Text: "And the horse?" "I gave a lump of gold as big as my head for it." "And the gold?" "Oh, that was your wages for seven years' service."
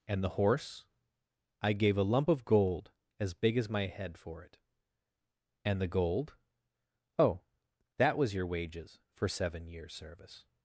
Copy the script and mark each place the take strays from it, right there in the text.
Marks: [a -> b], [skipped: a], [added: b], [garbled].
"And the horse?" "I gave a lump of gold as big as my head for it." "And the gold?" "Oh, that was your wages for seven years' service."